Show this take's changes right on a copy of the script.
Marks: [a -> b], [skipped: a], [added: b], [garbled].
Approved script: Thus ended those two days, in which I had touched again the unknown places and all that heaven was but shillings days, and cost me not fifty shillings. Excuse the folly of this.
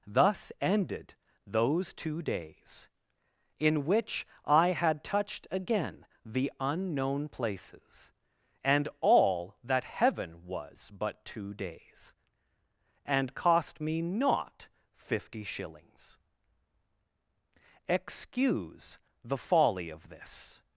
Thus ended those two days, in which I had touched again the unknown places and all that heaven was but [shillings -> two] days, and cost me not fifty shillings. Excuse the folly of this.